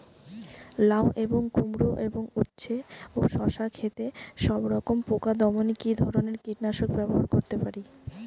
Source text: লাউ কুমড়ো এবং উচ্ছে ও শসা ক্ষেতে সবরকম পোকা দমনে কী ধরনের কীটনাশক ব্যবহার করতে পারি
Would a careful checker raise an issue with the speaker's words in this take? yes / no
yes